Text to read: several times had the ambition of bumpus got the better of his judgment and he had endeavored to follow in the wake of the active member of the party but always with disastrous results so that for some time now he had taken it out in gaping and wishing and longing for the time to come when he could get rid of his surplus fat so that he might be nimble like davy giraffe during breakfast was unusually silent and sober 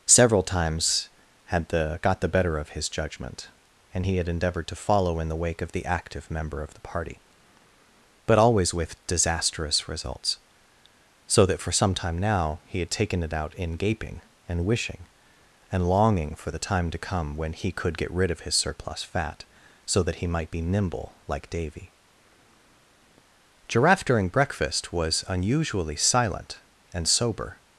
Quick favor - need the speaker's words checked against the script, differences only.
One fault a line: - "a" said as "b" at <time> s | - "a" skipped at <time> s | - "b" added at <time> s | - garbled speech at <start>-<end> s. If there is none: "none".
- "ambition of bumpus" skipped at 2.0 s